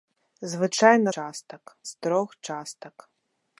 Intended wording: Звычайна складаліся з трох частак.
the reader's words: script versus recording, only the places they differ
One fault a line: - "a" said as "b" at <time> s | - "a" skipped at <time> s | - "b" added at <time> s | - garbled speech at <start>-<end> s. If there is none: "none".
- "складаліся" said as "частак" at 1.1 s